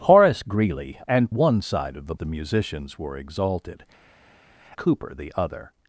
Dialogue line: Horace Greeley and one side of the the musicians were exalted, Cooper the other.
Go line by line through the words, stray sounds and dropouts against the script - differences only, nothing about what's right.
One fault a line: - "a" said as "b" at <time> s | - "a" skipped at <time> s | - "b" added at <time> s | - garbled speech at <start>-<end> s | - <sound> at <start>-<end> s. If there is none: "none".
none